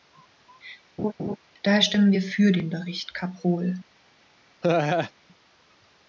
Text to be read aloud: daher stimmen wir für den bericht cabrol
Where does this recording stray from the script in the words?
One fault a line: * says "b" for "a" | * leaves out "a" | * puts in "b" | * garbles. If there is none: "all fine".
all fine